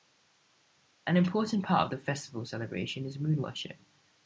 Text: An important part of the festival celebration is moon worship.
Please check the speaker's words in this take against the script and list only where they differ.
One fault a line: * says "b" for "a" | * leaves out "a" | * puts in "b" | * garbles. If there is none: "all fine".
all fine